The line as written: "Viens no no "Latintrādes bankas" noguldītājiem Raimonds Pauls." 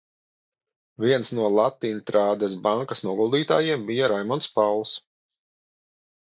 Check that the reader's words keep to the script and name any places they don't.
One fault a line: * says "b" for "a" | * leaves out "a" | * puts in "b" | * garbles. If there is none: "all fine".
* leaves out "no"
* puts in "bija"